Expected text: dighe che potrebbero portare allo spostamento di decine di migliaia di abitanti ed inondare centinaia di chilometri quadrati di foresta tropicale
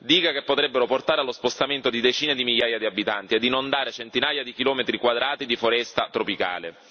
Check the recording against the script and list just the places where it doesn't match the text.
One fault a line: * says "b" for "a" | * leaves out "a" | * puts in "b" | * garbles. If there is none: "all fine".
all fine